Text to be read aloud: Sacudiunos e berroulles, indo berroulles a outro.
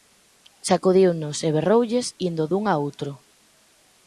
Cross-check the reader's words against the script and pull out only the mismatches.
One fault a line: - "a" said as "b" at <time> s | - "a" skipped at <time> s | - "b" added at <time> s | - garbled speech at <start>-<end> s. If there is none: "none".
- "berroulles" said as "dun" at 2.5 s